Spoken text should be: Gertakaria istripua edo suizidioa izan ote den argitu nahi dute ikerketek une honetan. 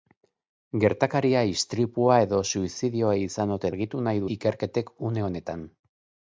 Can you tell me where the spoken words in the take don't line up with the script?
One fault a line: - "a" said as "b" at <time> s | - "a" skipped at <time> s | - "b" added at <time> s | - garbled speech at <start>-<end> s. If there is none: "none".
- "den" skipped at 3.7 s
- "dute" skipped at 4.2 s